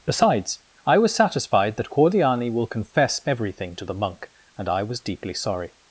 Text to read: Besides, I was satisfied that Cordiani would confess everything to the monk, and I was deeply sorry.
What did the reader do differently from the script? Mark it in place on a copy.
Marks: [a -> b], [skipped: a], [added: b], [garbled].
Besides, I was satisfied that Cordiani [would -> will] confess everything to the monk, and I was deeply sorry.